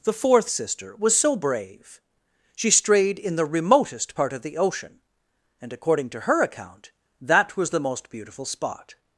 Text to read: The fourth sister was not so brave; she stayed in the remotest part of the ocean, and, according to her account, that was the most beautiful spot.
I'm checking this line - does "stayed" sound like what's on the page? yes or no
no